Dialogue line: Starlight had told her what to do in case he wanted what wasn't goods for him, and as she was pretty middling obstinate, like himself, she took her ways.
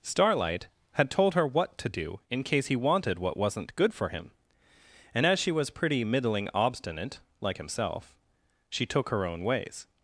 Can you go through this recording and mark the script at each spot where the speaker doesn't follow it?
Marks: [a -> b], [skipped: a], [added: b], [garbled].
Starlight had told her what to do in case he wanted what wasn't [goods -> good] for him, and as she was pretty middling obstinate, like himself, she took her [added: own] ways.